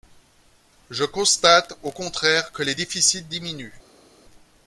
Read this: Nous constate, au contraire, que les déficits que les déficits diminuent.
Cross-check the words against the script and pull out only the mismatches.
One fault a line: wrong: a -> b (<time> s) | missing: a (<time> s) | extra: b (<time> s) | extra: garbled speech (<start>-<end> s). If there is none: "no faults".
wrong: Nous -> Je (0.9 s)
missing: que les déficits (3.2 s)